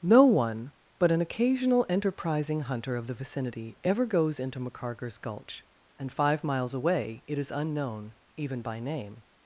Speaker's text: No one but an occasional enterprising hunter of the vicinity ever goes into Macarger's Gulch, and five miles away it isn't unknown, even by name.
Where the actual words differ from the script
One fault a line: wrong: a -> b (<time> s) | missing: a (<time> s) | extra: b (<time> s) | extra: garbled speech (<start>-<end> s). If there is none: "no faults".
wrong: isn't -> is (7.4 s)